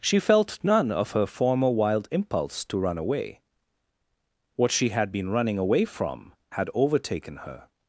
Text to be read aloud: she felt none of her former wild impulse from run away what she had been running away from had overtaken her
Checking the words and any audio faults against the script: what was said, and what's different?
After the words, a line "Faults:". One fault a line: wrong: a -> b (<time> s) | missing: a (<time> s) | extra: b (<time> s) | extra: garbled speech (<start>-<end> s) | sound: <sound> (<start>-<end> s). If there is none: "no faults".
she felt none of her former wild impulse to run away what she had been running away from had overtaken her
Faults:
wrong: from -> to (2.6 s)